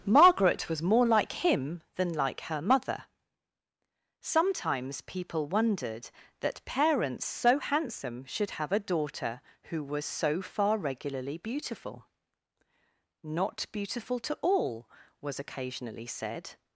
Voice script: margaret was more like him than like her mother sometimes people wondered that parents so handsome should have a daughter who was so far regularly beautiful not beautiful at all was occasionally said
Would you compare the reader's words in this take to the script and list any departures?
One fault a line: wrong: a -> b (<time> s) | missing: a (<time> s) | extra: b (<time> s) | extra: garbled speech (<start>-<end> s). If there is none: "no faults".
wrong: at -> to (14.2 s)